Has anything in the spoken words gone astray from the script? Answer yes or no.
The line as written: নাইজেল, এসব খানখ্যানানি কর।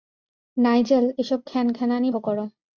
no